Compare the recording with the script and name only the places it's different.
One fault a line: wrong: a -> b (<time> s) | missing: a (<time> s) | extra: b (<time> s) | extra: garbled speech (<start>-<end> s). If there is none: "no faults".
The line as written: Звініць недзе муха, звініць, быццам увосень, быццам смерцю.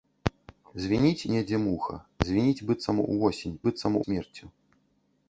no faults